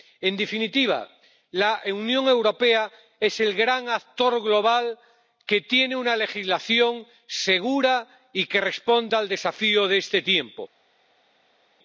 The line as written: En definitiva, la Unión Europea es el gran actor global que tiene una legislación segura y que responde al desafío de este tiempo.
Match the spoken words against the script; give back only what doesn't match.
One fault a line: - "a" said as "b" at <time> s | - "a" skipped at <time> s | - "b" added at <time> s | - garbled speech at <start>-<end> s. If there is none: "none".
none